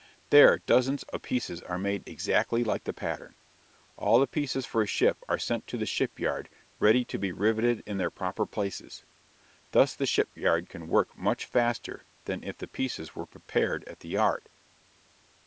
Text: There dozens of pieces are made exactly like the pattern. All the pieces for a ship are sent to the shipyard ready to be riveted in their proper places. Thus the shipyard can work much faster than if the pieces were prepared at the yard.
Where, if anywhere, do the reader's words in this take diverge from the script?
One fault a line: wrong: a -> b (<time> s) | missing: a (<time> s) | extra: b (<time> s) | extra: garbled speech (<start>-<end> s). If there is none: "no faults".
no faults